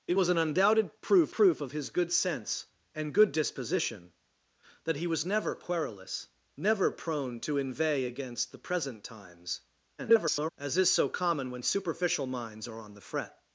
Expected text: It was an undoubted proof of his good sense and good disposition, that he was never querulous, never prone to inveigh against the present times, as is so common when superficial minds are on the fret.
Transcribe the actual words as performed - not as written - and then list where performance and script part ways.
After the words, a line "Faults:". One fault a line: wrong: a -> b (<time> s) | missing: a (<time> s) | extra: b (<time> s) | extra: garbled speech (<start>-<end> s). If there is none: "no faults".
It was an undoubted proof proof of his good sense and good disposition, that he was never querulous, never prone to inveigh against the present times, [garbled] as is so common when superficial minds are on the fret.
Faults:
extra: proof (1.3 s)
extra: garbled speech (10.0-10.5 s)